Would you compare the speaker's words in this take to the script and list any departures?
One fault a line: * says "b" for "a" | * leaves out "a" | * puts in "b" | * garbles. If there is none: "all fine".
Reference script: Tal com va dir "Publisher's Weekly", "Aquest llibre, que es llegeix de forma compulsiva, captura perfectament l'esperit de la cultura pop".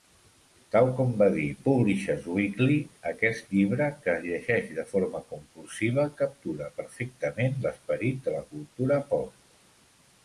all fine